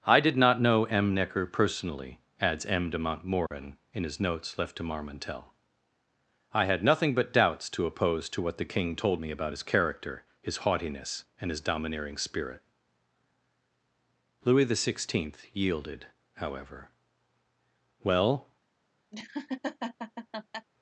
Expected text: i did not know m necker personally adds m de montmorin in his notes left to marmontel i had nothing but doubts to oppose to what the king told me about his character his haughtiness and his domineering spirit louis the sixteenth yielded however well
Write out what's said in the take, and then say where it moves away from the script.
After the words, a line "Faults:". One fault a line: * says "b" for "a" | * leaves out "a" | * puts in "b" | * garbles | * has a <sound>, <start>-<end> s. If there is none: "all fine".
i did not know m necker personally adds m de montmorin in his notes left to marmontel i had nothing but doubts to oppose to what the king told me about his character his haughtiness and his domineering spirit louis the sixteenth yielded however well
Faults:
* has a dropout, 3.5-3.5 s
* has a laugh, 19.1-20.7 s